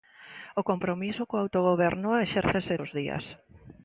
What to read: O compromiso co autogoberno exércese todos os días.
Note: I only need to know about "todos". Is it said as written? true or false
false